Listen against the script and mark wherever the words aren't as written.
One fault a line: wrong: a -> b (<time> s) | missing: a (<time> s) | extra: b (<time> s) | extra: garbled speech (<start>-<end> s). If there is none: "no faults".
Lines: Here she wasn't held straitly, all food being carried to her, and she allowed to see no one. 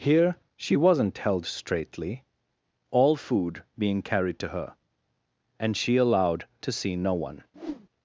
no faults